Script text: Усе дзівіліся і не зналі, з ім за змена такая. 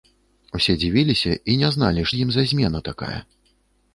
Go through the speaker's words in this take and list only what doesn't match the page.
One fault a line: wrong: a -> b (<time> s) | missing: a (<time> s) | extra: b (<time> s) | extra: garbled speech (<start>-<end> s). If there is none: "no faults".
no faults